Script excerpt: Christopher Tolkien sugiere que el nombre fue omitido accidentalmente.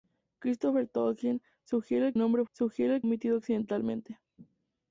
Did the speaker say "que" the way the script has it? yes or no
no